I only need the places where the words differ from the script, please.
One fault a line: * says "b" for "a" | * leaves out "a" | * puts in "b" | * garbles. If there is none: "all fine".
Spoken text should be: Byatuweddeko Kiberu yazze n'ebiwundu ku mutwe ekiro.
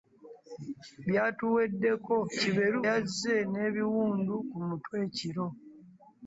all fine